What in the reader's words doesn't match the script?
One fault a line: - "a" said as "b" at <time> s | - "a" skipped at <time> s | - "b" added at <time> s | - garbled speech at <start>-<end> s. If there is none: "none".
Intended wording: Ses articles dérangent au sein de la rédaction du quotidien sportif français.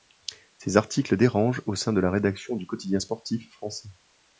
none